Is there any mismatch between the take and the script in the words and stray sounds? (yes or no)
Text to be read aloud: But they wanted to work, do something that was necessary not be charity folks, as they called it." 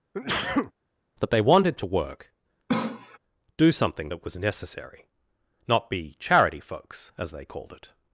yes